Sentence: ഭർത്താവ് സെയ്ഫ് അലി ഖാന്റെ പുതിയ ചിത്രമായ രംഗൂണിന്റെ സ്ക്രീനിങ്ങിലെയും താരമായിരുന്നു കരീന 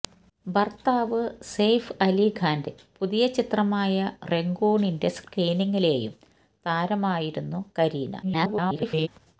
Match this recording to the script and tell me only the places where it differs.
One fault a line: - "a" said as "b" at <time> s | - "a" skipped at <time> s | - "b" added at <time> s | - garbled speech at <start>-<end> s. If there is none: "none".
- garbled speech at 8.2-9.1 s